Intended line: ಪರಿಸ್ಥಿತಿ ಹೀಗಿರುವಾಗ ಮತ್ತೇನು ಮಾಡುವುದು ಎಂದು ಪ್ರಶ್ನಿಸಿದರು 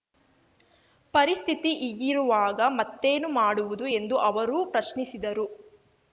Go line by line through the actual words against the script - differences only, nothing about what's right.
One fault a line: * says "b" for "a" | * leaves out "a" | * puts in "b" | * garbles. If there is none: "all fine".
* puts in "ಅವರು"